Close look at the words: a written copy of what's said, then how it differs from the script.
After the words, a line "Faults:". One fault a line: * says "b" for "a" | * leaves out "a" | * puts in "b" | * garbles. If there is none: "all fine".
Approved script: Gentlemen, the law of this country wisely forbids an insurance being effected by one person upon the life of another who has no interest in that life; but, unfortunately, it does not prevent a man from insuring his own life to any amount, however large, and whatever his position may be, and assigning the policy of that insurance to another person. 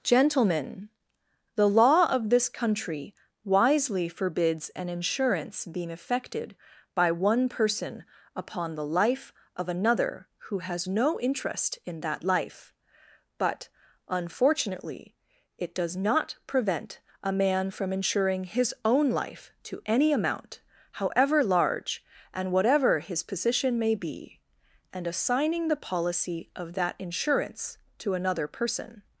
Gentlemen, the law of this country wisely forbids an insurance being effected by one person upon the life of another who has no interest in that life; but, unfortunately, it does not prevent a man from insuring his own life to any amount, however large, and whatever his position may be, and assigning the policy of that insurance to another person.
Faults:
all fine